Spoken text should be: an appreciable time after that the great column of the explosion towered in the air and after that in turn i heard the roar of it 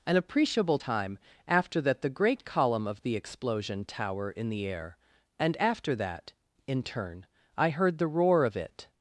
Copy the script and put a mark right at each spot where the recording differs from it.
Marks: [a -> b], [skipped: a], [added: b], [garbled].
an appreciable time after that the great column of the explosion [towered -> tower] in the air and after that in turn i heard the roar of it